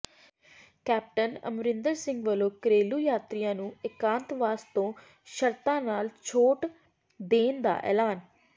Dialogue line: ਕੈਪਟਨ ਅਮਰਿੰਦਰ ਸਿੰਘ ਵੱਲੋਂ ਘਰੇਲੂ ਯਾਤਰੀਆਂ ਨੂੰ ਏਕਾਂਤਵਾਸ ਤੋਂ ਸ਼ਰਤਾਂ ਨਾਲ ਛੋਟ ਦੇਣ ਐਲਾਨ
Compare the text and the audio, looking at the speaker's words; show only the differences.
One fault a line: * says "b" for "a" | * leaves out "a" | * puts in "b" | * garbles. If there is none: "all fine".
* puts in "ਦਾ"